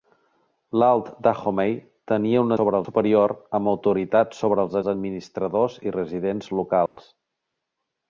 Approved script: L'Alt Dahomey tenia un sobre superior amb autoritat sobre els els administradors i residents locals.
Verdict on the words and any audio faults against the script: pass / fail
fail